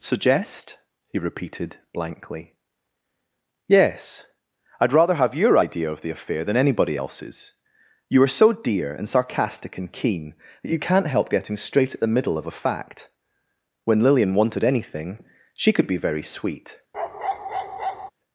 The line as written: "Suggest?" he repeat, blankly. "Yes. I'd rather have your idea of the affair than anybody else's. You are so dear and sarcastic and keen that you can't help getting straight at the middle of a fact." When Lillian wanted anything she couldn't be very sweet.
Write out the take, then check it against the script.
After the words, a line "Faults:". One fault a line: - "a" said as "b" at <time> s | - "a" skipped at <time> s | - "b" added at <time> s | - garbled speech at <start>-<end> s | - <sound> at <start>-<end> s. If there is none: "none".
"Suggest?" he repeated, blankly. "Yes. I'd rather have your idea of the affair than anybody else's. You are so dear and sarcastic and keen that you can't help getting straight at the middle of a fact." When Lillian wanted anything she could be very sweet.
Faults:
- "repeat" said as "repeated" at 1.2 s
- "couldn't" said as "could" at 15.7 s
- bark at 16.9-18.1 s